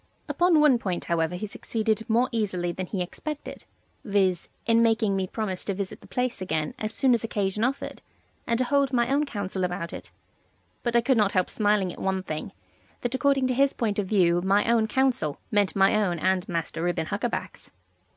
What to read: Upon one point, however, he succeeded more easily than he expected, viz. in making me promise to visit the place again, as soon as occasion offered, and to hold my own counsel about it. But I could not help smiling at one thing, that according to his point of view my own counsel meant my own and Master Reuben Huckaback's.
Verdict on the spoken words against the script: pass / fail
pass